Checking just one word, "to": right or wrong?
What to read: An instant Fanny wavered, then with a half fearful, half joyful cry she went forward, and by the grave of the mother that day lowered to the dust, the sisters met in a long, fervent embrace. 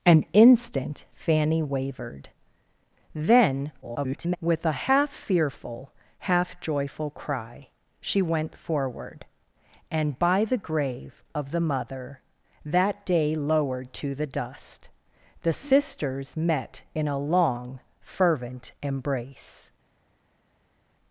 right